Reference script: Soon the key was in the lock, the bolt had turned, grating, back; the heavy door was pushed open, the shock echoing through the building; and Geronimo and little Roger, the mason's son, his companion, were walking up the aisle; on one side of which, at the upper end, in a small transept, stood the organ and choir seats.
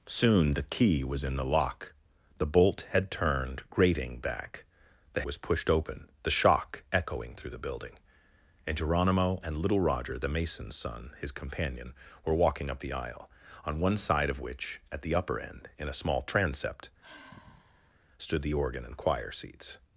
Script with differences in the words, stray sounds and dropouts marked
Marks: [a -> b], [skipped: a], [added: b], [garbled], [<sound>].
Soon the key was in the lock, the bolt had turned, grating, back; the [skipped: heavy door] was pushed open, the shock echoing through the building; and Geronimo and little Roger, the mason's son, his companion, were walking up the aisle; on one side of which, at the upper end, in a small transept, [sigh] stood the organ and choir seats.